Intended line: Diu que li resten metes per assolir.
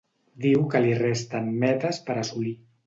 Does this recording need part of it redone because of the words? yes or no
no